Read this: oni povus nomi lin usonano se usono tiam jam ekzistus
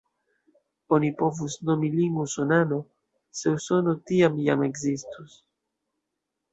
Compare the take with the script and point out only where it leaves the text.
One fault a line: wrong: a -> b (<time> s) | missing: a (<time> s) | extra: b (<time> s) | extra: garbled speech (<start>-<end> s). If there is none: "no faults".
no faults